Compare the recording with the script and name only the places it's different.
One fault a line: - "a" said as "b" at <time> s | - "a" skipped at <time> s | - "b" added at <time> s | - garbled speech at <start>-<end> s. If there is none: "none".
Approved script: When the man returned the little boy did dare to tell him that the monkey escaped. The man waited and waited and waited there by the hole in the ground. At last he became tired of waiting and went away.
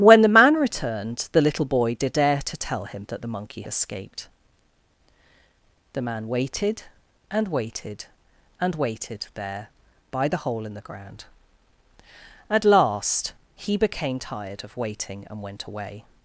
none